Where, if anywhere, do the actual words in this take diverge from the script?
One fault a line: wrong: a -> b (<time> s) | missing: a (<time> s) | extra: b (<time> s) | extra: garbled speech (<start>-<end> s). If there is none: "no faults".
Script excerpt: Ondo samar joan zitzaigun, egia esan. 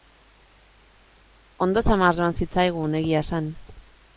no faults